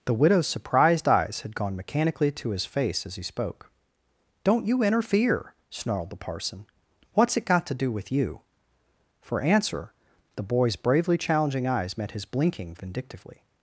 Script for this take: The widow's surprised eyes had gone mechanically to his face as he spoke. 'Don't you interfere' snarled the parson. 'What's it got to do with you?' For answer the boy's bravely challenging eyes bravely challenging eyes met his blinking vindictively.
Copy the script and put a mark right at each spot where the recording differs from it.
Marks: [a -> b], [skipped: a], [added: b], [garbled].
The widow's surprised eyes had gone mechanically to his face as he spoke. 'Don't you interfere' snarled the parson. 'What's it got to do with you?' For answer the boy's bravely challenging eyes [skipped: bravely challenging eyes] met his blinking vindictively.